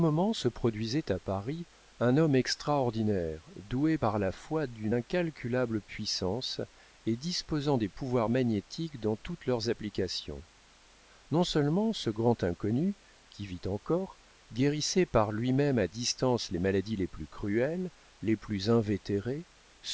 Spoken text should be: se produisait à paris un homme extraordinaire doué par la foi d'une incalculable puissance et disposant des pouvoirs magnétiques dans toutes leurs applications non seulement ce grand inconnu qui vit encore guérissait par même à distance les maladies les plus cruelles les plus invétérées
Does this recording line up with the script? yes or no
no